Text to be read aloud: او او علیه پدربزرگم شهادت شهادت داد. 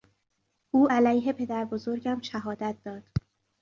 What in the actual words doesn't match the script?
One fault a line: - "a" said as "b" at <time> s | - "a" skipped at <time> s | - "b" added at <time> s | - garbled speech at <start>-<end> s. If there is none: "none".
- "او" skipped at 0.9 s
- "شهادت" skipped at 2.7 s